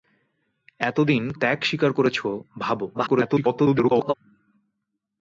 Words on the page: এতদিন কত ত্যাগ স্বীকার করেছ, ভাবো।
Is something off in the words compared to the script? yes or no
yes